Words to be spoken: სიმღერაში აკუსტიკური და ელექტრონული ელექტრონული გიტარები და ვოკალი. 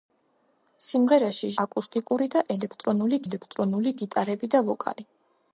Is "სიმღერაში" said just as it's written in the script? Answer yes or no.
yes